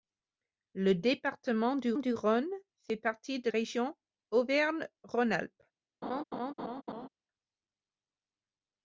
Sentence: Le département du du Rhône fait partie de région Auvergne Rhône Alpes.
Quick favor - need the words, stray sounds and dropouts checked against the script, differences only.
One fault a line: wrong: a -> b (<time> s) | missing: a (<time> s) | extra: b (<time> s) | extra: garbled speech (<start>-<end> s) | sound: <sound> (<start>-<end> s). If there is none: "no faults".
sound: laugh (6.0-7.1 s)